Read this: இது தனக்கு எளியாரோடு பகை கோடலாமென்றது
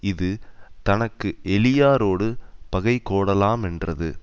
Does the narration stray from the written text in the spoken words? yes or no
no